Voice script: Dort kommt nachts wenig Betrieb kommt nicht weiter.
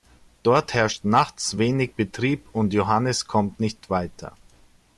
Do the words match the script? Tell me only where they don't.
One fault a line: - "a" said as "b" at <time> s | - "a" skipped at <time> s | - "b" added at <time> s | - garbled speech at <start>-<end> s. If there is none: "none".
- "kommt" said as "herrscht" at 0.7 s
- "und Johannes" added at 2.5 s